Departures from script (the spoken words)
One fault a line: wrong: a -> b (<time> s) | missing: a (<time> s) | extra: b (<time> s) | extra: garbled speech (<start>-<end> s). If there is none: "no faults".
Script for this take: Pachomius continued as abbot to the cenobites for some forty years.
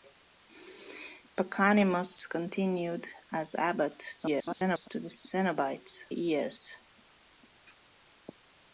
extra: garbled speech (4.2-4.9 s)
missing: for some forty (6.0 s)